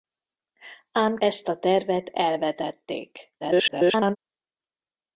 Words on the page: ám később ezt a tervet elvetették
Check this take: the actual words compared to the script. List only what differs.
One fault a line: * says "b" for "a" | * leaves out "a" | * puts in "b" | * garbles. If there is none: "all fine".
* leaves out "később"
* garbles